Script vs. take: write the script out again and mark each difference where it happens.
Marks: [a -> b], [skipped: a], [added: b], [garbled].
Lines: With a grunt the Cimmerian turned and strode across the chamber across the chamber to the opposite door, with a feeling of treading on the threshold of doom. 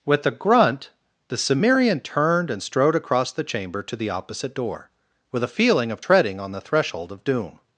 With a grunt the Cimmerian turned and strode across the chamber [skipped: across the chamber] to the opposite door, with a feeling of treading on the threshold of doom.